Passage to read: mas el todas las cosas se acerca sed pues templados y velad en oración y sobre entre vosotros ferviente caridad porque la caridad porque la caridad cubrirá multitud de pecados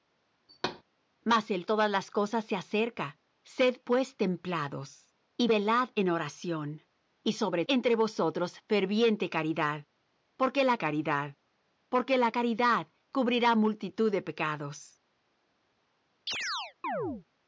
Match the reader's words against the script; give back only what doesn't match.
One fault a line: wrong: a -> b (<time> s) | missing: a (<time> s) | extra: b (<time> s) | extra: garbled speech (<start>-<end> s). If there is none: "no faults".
no faults